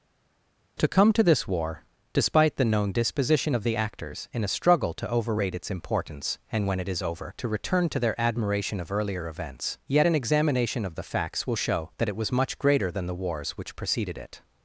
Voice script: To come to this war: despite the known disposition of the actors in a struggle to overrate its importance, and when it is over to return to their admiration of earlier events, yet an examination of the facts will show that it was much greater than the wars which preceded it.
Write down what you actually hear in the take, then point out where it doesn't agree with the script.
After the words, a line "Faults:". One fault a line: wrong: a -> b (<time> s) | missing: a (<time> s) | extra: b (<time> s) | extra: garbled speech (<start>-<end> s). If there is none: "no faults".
To come to this war: despite the known disposition of the actors in a struggle to overrate its importance, and when it is over to return to their admiration of earlier events, yet an examination of the facts will show that it was much greater than the wars which preceded it.
Faults:
no faults